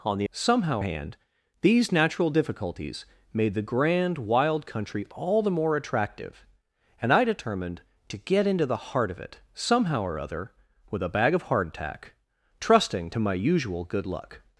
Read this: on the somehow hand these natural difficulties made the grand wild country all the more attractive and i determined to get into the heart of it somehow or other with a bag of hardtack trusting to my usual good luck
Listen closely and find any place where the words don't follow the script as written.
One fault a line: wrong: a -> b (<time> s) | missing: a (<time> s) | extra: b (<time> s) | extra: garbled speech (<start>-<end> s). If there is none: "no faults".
no faults